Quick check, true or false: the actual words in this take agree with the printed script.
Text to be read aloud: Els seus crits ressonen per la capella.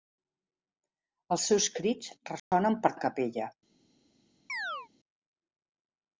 true